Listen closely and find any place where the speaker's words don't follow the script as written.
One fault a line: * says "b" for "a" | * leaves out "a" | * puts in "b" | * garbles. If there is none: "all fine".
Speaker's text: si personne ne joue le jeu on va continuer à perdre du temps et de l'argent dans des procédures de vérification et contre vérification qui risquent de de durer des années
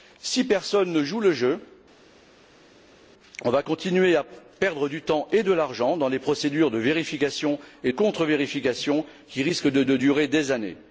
all fine